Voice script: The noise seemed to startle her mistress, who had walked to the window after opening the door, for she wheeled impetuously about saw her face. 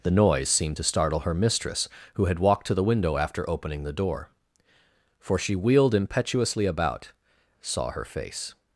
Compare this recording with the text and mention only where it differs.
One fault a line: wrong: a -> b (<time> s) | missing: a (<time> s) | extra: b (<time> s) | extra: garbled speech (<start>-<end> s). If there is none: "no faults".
no faults